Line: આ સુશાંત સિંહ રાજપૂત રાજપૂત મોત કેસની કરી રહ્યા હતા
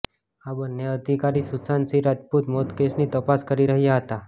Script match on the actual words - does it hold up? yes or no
no